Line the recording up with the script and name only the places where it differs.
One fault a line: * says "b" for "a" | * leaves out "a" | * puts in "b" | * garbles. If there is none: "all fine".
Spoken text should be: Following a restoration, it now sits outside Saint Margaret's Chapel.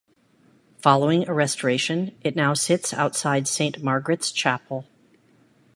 all fine